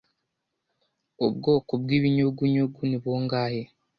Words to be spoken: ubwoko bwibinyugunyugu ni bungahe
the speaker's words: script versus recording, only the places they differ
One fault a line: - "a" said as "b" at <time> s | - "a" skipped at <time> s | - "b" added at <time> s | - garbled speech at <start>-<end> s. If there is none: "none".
none